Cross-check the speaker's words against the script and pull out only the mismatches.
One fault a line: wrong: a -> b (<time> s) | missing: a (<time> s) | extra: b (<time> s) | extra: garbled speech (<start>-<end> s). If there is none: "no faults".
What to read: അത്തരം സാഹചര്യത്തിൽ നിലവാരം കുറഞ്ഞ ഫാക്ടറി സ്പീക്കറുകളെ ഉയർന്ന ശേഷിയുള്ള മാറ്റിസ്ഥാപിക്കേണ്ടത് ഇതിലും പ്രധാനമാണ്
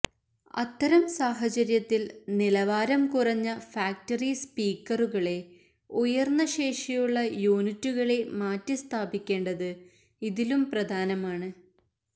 extra: യൂണിറ്റുകളെ (7.5 s)